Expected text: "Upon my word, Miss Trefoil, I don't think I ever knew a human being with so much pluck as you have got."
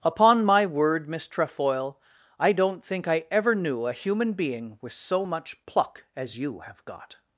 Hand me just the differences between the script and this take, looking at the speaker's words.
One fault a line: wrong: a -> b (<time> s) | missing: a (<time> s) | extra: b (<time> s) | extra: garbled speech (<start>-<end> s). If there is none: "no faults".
no faults